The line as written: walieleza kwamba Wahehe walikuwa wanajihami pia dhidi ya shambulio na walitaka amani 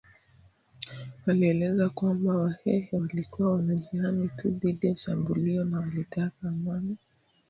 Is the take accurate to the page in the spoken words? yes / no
no